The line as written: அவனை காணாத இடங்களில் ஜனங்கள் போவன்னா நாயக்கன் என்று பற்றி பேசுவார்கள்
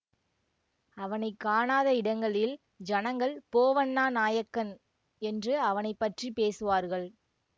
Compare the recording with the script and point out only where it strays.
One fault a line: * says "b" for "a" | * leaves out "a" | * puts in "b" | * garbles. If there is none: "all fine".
* puts in "அவனை"